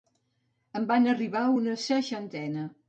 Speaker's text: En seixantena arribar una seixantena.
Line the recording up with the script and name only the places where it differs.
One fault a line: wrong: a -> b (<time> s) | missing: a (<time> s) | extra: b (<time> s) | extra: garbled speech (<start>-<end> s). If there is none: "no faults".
wrong: seixantena -> van (0.9 s)